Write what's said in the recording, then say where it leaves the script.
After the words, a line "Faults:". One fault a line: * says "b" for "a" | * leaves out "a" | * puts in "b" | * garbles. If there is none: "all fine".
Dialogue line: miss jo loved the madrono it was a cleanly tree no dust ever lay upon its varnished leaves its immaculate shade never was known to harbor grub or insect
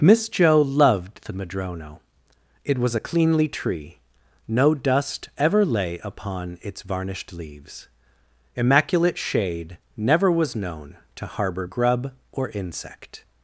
miss jo loved the madrono it was a cleanly tree no dust ever lay upon its varnished leaves immaculate shade never was known to harbor grub or insect
Faults:
* leaves out "its"